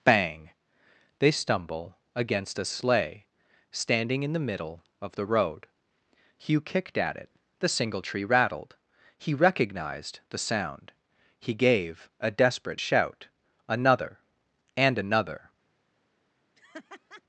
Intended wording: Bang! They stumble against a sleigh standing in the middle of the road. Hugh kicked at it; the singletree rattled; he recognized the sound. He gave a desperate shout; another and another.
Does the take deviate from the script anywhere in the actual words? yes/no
no